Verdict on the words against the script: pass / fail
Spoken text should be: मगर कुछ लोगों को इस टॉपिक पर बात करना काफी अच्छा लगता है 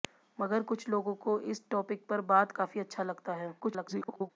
fail